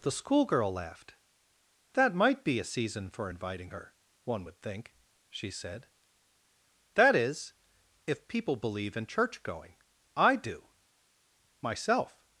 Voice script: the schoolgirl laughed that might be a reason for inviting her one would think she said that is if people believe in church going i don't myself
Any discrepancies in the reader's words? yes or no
yes